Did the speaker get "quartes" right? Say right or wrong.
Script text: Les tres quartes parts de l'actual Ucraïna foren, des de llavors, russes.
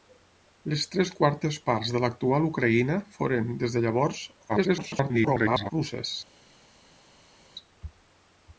right